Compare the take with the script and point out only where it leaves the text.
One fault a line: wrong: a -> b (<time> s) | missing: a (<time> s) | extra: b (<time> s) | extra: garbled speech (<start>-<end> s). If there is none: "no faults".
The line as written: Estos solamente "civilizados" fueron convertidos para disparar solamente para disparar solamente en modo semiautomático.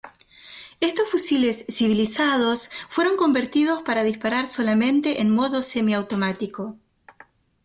wrong: solamente -> fusiles (1.1 s)
missing: para disparar solamente (5.2 s)